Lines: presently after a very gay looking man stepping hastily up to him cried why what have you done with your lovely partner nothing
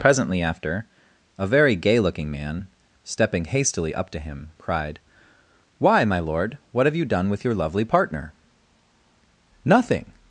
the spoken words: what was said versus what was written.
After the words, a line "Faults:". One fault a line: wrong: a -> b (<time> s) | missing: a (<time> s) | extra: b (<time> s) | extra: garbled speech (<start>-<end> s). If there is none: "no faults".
presently after a very gay looking man stepping hastily up to him cried why my lord what have you done with your lovely partner nothing
Faults:
extra: my lord (6.0 s)